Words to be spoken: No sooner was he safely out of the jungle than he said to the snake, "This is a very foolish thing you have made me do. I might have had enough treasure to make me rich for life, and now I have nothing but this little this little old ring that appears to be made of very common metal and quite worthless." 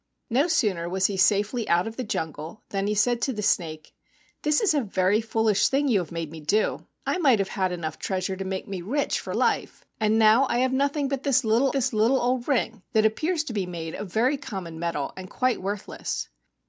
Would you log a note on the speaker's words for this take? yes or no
no